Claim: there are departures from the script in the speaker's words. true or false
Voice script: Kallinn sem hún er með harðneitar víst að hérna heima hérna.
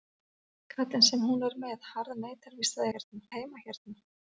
false